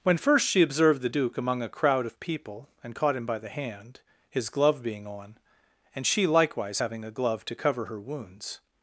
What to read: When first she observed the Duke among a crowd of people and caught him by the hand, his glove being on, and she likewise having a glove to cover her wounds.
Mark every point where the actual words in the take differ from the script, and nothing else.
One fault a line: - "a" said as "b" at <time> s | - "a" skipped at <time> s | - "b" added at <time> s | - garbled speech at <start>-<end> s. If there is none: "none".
none